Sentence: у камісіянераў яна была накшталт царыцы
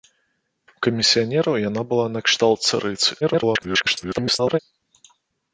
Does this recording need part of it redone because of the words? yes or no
yes